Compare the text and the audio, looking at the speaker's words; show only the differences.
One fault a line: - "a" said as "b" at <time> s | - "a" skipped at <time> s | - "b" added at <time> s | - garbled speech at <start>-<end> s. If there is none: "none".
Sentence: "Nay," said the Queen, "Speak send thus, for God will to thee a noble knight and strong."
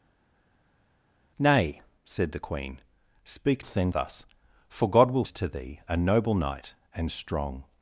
none